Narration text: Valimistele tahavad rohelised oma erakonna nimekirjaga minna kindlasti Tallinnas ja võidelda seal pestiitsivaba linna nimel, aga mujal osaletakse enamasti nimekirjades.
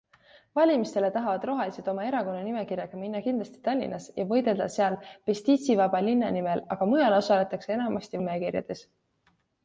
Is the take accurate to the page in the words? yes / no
yes